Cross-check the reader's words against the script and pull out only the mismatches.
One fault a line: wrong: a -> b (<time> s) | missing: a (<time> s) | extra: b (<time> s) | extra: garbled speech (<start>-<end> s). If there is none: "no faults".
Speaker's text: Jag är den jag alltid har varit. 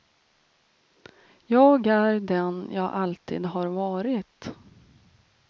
no faults